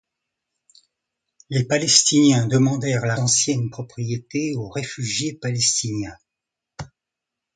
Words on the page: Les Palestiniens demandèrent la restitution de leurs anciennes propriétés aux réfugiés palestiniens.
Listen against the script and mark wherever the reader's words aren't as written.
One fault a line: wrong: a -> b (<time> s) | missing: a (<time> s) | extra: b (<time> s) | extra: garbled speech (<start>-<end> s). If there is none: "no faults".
missing: restitution de leurs (3.1 s)